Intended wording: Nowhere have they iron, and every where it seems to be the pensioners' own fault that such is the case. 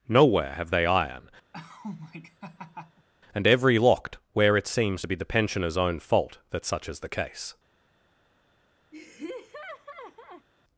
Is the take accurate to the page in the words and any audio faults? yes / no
no